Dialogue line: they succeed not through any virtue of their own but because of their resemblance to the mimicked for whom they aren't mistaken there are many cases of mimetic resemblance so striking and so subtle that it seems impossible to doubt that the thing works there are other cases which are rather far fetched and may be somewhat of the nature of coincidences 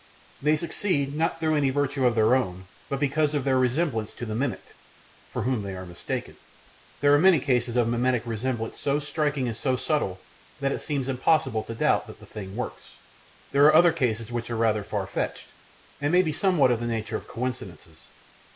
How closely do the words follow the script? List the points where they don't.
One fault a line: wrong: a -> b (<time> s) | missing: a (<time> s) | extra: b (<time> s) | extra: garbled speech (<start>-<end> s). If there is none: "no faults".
wrong: aren't -> are (5.7 s)